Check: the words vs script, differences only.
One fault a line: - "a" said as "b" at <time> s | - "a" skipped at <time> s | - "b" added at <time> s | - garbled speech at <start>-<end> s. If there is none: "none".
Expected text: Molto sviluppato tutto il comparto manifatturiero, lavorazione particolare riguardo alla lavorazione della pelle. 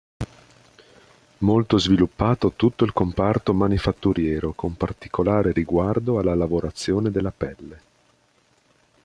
- "lavorazione" said as "con" at 4.5 s